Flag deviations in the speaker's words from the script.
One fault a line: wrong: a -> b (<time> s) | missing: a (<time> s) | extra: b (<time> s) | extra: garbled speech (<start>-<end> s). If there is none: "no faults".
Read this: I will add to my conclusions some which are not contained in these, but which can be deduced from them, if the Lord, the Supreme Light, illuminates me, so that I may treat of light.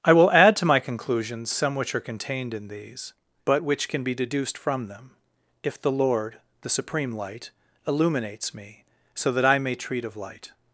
missing: not (2.0 s)